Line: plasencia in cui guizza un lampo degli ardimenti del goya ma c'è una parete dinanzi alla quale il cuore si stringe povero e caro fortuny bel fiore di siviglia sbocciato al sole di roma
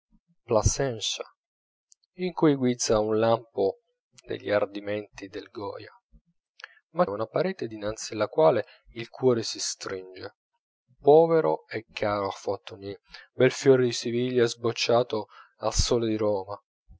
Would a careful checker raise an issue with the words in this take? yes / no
yes